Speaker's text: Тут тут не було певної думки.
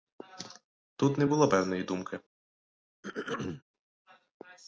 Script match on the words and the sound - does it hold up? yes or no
no